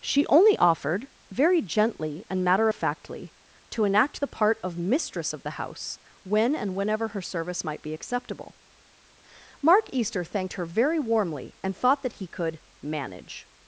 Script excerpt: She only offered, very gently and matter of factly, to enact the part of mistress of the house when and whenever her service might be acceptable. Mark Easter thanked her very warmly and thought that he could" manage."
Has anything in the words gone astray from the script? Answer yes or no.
no